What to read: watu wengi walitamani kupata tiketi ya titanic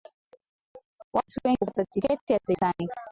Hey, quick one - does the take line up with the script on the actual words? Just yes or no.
no